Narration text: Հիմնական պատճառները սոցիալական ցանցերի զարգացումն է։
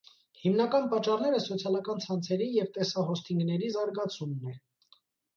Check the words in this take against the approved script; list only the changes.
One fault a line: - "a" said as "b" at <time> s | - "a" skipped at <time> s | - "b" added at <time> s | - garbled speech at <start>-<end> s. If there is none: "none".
- "և տեսահոսթինգների" added at 2.5 s